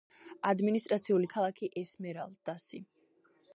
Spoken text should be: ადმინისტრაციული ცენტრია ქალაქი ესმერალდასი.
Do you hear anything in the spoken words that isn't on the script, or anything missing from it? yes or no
yes